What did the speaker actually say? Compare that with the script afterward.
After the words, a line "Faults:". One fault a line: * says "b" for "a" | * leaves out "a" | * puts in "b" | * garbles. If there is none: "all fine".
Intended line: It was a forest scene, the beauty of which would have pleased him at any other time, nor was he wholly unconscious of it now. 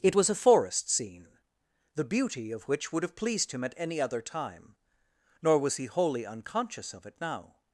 It was a forest scene, the beauty of which would have pleased him at any other time, nor was he wholly unconscious of it now.
Faults:
all fine